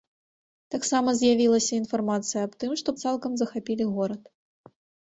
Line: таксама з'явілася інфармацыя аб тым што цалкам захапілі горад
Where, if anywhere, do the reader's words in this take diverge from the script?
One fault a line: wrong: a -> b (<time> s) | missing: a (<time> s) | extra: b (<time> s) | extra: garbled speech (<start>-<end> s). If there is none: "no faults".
no faults